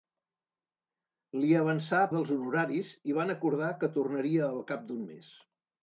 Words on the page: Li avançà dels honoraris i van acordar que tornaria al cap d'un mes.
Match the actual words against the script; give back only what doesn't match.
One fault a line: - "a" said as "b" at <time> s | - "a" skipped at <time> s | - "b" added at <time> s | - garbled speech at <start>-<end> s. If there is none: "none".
none